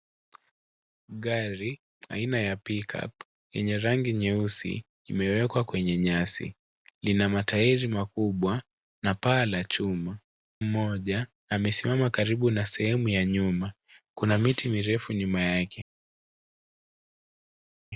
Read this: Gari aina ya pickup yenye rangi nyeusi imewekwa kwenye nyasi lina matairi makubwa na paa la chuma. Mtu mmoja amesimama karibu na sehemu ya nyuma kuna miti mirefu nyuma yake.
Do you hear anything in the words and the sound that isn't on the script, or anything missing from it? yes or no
yes